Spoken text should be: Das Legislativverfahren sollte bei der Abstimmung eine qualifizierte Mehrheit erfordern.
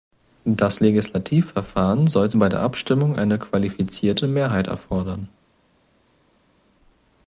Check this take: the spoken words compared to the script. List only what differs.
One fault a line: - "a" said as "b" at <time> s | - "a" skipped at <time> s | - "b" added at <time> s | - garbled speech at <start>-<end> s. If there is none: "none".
none